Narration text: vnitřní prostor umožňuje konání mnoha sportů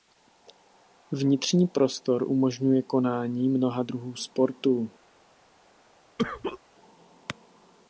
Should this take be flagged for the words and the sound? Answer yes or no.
yes